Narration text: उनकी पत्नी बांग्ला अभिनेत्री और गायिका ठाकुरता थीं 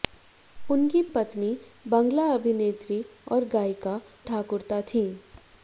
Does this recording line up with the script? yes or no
yes